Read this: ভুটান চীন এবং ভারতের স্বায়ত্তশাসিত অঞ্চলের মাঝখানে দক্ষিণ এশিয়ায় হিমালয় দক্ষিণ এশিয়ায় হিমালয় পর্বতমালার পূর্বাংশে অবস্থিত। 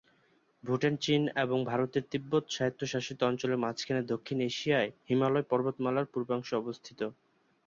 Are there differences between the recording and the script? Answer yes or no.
yes